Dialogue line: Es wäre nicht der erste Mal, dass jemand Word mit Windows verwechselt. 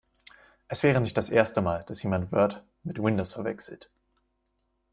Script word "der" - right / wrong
wrong